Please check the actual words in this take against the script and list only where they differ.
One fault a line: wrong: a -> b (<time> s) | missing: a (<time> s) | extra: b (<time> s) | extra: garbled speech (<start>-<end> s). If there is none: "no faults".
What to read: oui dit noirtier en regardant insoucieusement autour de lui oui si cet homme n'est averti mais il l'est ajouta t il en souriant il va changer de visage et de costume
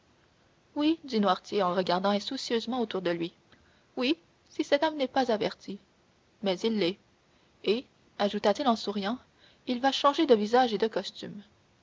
extra: pas (5.1 s)
extra: et (7.6 s)